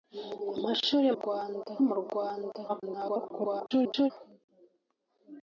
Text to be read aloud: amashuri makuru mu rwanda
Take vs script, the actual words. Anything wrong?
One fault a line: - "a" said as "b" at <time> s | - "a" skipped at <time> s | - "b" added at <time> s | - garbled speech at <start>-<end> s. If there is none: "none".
- "makuru" said as "rwanda" at 1.1 s
- garbled speech at 2.7-4.1 s